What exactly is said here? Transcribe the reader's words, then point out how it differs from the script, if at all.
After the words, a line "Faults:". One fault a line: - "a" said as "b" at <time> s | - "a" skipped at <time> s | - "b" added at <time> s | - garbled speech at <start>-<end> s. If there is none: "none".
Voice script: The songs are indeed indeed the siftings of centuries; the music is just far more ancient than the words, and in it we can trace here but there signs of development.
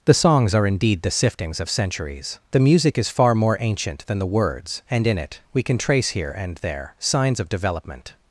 The songs are indeed the siftings of centuries; the music is far more ancient than the words, and in it we can trace here and there signs of development.
Faults:
- "indeed" skipped at 1.0 s
- "just" skipped at 3.1 s
- "but" said as "and" at 6.3 s